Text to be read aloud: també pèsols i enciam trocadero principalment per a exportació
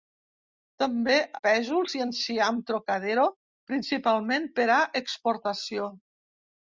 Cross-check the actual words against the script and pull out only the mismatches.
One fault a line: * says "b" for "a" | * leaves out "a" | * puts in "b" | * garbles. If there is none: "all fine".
all fine